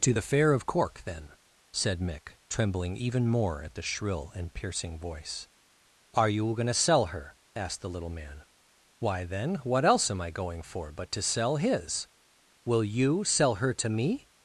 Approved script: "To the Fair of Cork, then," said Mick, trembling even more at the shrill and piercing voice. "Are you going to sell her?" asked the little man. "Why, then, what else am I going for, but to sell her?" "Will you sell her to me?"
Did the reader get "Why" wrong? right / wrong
right